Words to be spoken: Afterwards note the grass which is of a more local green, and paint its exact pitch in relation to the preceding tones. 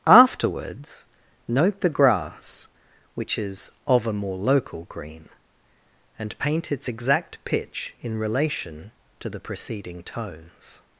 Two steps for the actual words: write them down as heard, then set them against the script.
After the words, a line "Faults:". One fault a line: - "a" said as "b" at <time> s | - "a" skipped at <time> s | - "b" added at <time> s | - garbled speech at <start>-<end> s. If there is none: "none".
Afterwards note the grass which is of a more local green, and paint its exact pitch in relation to the preceding tones.
Faults:
none